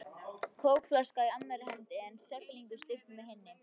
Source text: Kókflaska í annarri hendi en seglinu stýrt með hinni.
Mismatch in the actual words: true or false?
false